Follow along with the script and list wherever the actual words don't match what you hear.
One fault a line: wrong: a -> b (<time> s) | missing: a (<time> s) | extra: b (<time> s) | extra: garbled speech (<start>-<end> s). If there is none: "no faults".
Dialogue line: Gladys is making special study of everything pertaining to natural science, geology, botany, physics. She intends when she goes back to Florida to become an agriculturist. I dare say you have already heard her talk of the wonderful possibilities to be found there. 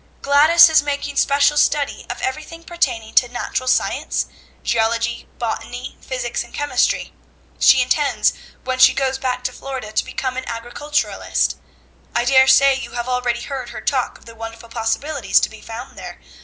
extra: and chemistry (6.4 s)